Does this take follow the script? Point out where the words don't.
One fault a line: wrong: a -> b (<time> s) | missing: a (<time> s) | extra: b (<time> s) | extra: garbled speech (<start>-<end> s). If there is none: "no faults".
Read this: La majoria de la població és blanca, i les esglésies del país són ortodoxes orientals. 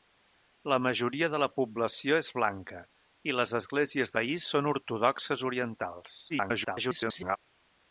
missing: del (4.2 s)
extra: garbled speech (6.3-7.4 s)